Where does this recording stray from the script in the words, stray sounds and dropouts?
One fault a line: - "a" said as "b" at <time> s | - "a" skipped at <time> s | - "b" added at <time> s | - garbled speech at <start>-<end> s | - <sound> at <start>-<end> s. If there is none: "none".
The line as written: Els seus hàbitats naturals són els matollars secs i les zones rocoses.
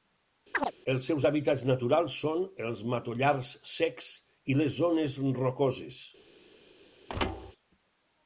- chirp at 0.5-0.7 s
- thud at 7.1-7.5 s